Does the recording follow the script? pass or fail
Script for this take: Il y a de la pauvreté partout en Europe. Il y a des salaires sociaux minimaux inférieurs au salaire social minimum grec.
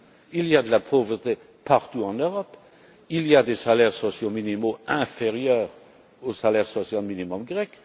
pass